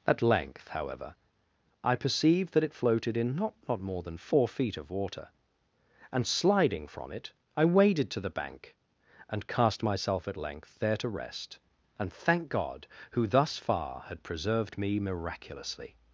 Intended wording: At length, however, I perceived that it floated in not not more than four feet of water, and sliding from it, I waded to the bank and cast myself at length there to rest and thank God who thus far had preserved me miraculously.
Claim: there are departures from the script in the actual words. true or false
false